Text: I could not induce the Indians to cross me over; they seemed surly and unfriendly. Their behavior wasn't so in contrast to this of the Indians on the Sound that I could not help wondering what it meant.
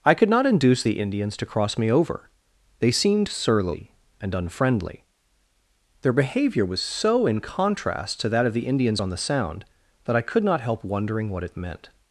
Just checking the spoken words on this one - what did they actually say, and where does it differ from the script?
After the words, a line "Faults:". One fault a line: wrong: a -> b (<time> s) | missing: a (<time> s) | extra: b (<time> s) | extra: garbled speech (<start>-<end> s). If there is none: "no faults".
I could not induce the Indians to cross me over; they seemed surly and unfriendly. Their behavior was so in contrast to that of the Indians on the Sound that I could not help wondering what it meant.
Faults:
wrong: wasn't -> was (6.7 s)
wrong: this -> that (8.3 s)